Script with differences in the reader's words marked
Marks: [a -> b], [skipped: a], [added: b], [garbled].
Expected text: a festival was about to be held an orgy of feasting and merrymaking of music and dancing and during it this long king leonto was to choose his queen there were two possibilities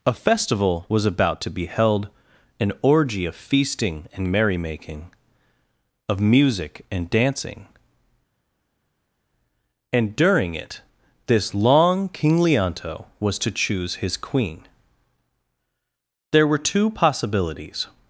a festival was about to be held an orgy of feasting and merrymaking of music and dancing and during it this long king leonto was to choose his queen there were two possibilities